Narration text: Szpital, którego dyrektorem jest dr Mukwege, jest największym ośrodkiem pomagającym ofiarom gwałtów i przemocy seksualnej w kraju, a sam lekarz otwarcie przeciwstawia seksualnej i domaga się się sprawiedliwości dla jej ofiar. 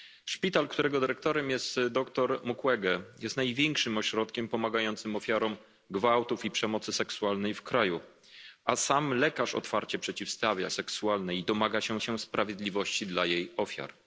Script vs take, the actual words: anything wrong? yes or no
no